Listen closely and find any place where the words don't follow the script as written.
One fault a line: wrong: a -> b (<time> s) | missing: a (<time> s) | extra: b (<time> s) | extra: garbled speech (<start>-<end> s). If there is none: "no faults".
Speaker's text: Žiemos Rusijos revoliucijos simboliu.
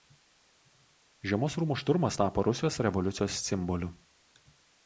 extra: rūmų šturmas tapo (1.6 s)